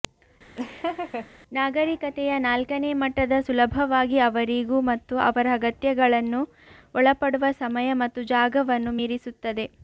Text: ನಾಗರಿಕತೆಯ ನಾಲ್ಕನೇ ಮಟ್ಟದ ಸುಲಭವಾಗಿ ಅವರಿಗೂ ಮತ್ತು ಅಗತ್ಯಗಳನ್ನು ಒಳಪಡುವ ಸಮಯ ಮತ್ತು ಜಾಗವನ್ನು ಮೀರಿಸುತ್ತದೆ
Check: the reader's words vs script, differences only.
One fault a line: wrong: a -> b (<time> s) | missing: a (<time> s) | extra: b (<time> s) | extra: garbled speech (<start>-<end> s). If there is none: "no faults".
extra: ಅವರ (5.2 s)